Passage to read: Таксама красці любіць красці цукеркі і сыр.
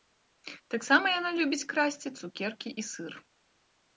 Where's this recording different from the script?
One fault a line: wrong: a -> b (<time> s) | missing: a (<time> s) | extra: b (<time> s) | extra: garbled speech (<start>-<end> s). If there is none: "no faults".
wrong: красці -> яна (1.2 s)